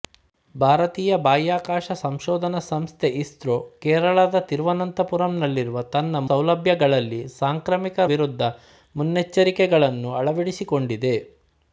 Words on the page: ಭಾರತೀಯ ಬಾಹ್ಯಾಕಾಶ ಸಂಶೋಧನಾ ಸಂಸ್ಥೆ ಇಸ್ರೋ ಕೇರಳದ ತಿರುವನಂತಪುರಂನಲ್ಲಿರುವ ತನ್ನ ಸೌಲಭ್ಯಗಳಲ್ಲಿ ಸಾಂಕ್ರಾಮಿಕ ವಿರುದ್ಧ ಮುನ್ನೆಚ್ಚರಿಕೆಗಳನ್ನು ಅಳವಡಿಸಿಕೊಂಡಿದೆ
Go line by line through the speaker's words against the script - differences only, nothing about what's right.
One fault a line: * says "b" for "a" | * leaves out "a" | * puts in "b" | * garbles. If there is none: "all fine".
all fine